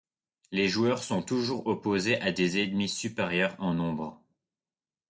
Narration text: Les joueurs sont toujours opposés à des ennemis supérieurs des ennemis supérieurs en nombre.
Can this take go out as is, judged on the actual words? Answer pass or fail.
fail